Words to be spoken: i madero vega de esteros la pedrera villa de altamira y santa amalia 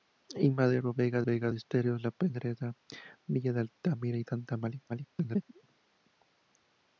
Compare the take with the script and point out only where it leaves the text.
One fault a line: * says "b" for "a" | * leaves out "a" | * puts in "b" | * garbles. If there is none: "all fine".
* puts in "vega"
* garbles